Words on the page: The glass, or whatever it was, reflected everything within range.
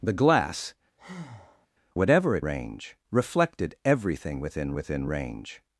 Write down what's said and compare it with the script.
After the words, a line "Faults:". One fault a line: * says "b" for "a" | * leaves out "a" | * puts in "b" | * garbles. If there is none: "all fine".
The glass, whatever it range, reflected everything within within range.
Faults:
* leaves out "or"
* says "range" for "was"
* puts in "within"